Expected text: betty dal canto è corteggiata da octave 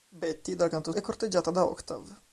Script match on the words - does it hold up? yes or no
yes